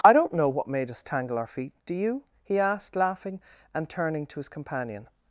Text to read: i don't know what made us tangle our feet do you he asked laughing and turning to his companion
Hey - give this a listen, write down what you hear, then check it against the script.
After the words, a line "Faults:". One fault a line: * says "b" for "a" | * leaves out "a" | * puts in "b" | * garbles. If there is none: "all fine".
i don't know what made us tangle our feet do you he asked laughing and turning to his companion
Faults:
all fine